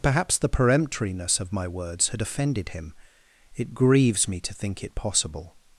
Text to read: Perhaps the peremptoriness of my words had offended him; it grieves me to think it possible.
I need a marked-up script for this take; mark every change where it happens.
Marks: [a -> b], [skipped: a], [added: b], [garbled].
Perhaps the peremptoriness of my words had offended him; it grieves me to think it possible.